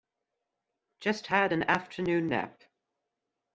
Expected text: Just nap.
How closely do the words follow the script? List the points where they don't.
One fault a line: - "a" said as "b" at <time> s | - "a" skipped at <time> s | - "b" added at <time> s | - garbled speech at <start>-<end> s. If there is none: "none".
- "had an afternoon" added at 1.3 s